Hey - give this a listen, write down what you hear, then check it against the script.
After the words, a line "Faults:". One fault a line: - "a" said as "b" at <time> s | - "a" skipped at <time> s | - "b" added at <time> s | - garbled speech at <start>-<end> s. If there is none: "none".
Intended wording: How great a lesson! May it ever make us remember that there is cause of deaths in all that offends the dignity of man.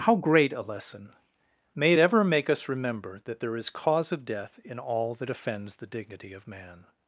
How great a lesson! May it ever make us remember that there is cause of death in all that offends the dignity of man.
Faults:
- "deaths" said as "death" at 4.2 s